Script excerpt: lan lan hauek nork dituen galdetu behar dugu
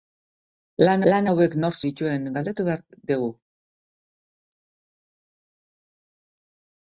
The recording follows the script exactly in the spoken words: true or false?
true